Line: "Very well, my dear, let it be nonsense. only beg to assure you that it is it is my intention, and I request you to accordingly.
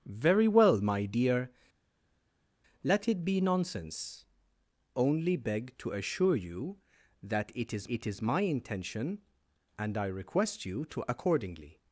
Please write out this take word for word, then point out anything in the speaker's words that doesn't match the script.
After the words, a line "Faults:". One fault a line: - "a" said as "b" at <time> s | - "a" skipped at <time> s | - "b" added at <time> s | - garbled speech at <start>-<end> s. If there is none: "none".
"Very well, my dear, let it be nonsense. only beg to assure you that it is it is my intention, and I request you to accordingly.
Faults:
none